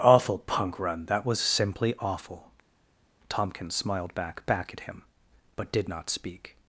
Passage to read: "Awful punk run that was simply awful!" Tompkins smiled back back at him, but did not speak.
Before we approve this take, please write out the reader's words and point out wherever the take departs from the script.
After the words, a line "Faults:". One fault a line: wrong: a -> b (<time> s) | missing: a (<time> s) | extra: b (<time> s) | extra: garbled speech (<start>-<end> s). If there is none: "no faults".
"Awful punk run that was simply awful!" Tompkins smiled back back at him, but did not speak.
Faults:
no faults